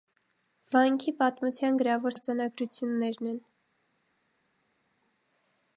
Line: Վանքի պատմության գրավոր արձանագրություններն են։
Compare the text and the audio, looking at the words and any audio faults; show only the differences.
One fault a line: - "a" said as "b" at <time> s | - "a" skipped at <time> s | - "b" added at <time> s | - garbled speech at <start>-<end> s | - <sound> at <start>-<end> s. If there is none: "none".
none